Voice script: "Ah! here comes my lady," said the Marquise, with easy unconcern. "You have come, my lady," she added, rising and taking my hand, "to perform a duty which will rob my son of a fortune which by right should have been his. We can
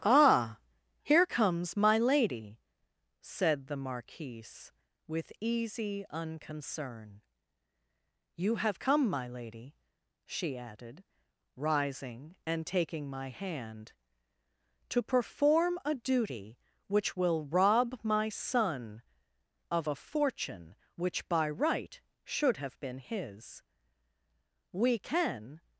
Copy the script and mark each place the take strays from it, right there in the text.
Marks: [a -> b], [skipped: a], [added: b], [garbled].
"Ah! here comes my lady," said the Marquise, with easy unconcern. "You have come, my lady," she added, rising and taking my hand, "to perform a duty which will rob my son of a fortune which by right should have been his. We can